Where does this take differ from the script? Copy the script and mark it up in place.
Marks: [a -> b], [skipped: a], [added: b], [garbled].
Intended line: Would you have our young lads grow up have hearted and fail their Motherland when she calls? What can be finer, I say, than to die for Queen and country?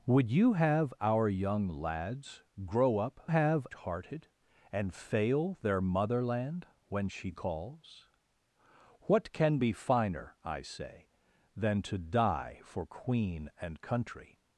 Would you have our young lads grow up have hearted and fail their Motherland when she calls? What can be finer, I say, than to die for Queen and country?